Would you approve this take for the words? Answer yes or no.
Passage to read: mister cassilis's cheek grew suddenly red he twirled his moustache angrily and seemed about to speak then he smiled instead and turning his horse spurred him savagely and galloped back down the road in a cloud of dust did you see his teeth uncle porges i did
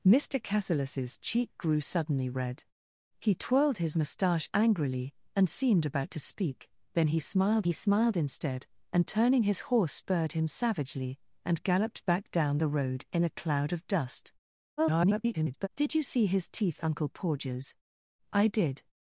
no